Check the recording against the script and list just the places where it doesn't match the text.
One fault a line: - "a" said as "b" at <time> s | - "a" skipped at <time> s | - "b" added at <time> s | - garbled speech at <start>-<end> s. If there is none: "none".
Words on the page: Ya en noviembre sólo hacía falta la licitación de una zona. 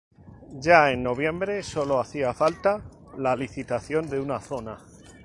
none